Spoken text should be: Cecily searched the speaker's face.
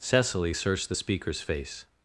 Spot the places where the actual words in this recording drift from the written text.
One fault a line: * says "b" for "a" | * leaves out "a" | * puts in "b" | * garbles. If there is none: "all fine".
all fine